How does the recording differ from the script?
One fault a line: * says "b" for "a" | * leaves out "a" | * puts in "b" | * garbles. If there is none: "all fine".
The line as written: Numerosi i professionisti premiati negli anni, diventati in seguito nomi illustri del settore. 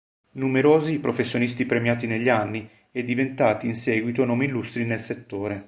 * puts in "e"
* says "nel" for "del"